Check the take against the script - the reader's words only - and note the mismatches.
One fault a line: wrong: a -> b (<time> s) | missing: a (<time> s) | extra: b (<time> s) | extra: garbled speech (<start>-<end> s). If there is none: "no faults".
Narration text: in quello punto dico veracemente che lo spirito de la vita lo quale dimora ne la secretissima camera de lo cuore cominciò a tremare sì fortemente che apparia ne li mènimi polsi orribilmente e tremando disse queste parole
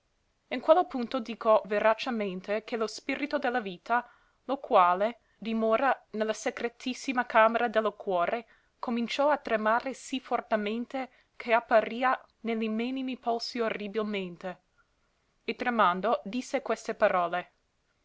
no faults